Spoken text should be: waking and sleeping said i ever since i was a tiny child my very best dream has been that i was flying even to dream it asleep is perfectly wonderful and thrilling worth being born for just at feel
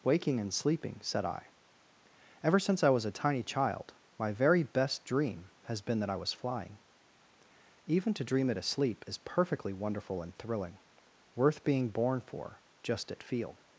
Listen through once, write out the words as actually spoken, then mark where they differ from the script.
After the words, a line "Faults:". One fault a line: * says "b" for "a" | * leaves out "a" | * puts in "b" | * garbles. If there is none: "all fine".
waking and sleeping said i ever since i was a tiny child my very best dream has been that i was flying even to dream it asleep is perfectly wonderful and thrilling worth being born for just at feel
Faults:
all fine